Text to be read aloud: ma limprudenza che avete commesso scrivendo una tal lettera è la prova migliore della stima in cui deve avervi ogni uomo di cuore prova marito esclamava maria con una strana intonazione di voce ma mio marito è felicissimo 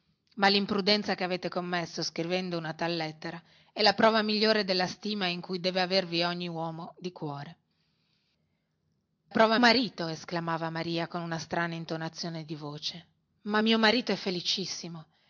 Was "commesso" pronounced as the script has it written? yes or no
yes